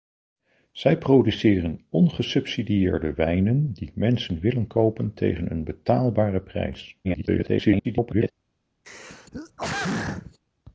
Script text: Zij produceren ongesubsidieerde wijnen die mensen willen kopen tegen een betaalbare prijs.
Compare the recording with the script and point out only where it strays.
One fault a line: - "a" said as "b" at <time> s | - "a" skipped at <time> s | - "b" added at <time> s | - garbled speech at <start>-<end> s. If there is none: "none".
- garbled speech at 7.0-8.3 s